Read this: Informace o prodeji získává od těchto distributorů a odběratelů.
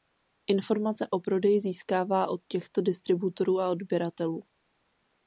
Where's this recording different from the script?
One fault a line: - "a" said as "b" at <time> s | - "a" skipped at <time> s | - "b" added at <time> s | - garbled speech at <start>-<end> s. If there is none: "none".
none